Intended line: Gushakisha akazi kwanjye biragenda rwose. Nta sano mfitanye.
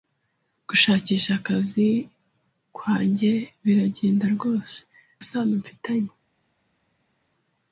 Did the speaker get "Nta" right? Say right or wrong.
wrong